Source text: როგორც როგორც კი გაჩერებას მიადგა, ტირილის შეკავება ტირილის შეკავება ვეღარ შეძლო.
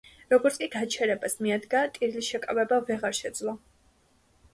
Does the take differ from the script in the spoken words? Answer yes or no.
yes